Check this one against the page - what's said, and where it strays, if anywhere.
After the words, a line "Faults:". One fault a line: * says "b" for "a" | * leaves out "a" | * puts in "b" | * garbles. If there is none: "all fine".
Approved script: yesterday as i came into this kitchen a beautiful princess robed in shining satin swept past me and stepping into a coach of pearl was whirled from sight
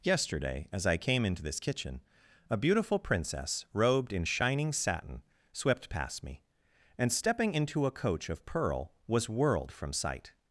yesterday as i came into this kitchen a beautiful princess robed in shining satin swept past me and stepping into a coach of pearl was whirled from sight
Faults:
all fine